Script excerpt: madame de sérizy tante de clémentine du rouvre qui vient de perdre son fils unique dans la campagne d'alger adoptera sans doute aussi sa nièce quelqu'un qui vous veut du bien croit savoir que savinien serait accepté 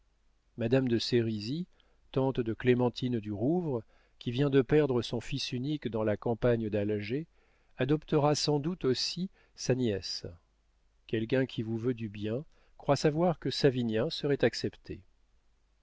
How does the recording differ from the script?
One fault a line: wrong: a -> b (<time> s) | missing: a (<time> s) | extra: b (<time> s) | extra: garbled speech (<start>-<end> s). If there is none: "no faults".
no faults